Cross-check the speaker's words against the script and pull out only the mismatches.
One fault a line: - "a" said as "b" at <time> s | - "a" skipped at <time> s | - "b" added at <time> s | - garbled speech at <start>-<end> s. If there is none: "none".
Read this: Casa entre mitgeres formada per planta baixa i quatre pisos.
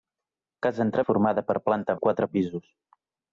- "mitgeres" skipped at 1.0 s
- "baixa" skipped at 2.0 s